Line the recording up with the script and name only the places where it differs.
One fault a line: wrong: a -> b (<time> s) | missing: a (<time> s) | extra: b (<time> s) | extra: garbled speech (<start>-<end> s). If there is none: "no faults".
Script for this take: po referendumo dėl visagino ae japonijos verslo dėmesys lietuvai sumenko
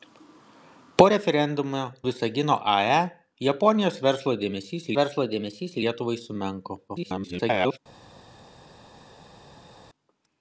missing: dėl (1.8 s)
extra: verslo dėmesys (5.0 s)
extra: garbled speech (6.9-7.8 s)